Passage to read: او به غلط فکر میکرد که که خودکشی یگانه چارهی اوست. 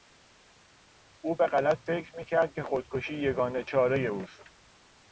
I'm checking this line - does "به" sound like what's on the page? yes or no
yes